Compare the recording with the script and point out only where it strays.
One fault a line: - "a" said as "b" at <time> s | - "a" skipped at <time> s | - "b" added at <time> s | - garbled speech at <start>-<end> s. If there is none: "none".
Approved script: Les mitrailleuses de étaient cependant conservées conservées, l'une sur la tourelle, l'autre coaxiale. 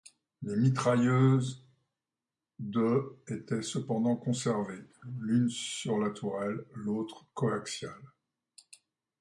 - "conservées" skipped at 4.8 s